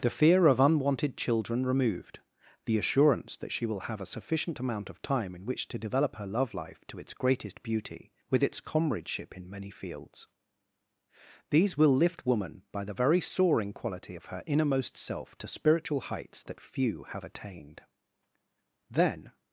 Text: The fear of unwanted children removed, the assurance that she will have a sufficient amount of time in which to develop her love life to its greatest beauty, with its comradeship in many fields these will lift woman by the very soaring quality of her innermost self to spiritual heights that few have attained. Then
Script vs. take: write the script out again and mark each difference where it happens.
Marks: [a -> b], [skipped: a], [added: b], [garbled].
The fear of unwanted children removed, the assurance that she will have a sufficient amount of time in which to develop her love life to its greatest beauty, with its comradeship in many fields these will lift woman by the very soaring quality of her innermost self to spiritual heights that few have attained. Then